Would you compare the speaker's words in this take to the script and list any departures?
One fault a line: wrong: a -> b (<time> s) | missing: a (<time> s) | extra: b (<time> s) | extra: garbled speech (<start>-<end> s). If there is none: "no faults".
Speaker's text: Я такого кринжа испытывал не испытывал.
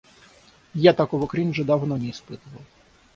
wrong: испытывал -> давно (1.6 s)